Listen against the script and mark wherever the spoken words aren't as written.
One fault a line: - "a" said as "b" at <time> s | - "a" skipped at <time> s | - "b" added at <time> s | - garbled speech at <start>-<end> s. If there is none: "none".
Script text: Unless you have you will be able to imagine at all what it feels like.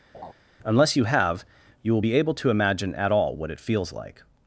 none